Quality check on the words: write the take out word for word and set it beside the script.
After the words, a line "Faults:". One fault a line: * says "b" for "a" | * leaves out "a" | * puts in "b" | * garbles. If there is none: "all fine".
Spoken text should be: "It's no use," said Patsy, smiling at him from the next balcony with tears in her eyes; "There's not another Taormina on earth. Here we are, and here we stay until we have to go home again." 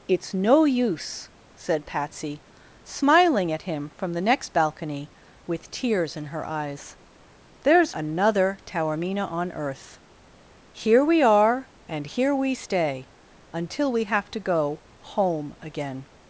"It's no use," said Patsy, smiling at him from the next balcony with tears in her eyes; "There's another Taormina on earth. Here we are, and here we stay until we have to go home again."
Faults:
* leaves out "not"